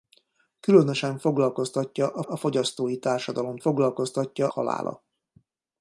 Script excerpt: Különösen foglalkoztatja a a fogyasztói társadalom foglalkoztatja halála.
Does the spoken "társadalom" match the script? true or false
true